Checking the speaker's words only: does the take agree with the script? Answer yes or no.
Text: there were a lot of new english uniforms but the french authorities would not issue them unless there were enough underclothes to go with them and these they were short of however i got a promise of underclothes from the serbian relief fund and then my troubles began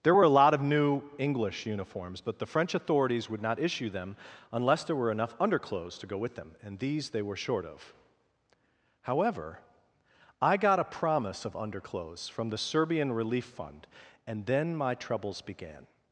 yes